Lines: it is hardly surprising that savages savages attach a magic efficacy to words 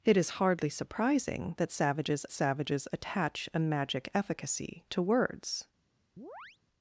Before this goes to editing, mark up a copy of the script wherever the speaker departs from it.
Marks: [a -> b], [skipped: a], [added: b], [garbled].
it is hardly surprising that savages savages attach a magic efficacy to words